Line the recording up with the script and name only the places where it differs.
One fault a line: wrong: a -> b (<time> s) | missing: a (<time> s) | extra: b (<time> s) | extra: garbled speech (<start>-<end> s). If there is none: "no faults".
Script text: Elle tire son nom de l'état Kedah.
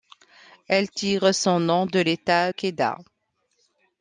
no faults